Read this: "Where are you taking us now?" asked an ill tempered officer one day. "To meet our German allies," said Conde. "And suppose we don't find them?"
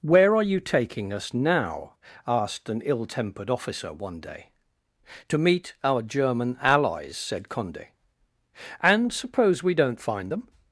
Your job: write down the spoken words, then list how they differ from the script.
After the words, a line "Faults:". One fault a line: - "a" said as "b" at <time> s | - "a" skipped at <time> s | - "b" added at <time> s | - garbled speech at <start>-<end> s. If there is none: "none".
"Where are you taking us now?" asked an ill tempered officer one day. "To meet our German allies," said Conde. "And suppose we don't find them?"
Faults:
none